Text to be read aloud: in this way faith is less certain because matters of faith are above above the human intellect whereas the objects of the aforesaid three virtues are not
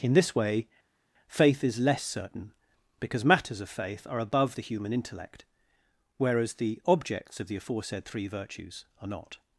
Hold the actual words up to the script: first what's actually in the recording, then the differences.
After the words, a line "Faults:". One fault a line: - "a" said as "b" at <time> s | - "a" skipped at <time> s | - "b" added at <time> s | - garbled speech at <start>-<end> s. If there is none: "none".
in this way faith is less certain because matters of faith are above the human intellect whereas the objects of the aforesaid three virtues are not
Faults:
- "above" skipped at 4.6 s